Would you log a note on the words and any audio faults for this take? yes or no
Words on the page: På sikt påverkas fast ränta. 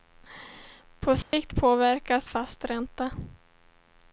yes